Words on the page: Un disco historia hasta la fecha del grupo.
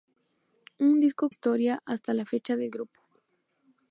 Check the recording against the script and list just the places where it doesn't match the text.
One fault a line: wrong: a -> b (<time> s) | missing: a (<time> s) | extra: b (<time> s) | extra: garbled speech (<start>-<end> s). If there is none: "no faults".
no faults